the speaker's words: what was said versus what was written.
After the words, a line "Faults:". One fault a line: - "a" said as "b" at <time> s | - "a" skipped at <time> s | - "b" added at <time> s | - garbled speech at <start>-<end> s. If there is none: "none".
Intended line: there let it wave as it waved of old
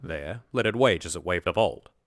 there let it wage as it waved of old
Faults:
- "wave" said as "wage" at 0.8 s